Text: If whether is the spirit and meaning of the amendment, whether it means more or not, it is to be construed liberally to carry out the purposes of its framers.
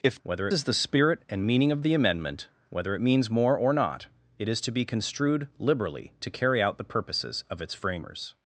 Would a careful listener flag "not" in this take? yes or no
no